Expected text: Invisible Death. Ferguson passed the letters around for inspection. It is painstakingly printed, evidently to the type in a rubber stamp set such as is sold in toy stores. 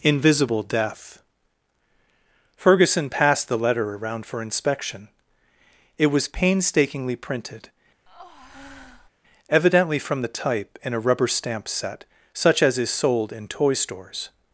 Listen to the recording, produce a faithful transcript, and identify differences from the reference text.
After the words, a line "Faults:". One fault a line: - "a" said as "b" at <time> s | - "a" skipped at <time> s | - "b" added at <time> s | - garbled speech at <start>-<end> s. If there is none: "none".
Invisible Death. Ferguson passed the letter around for inspection. It was painstakingly printed, evidently from the type in a rubber stamp set such as is sold in toy stores.
Faults:
- "letters" said as "letter" at 3.6 s
- "is" said as "was" at 6.1 s
- "to" said as "from" at 10.0 s